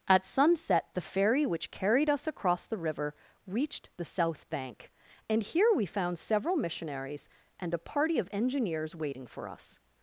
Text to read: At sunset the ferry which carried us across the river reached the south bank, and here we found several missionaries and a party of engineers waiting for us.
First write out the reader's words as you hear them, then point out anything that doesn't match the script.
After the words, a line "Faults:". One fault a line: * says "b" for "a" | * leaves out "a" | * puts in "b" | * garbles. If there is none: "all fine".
At sunset the ferry which carried us across the river reached the south bank, and here we found several missionaries and a party of engineers waiting for us.
Faults:
all fine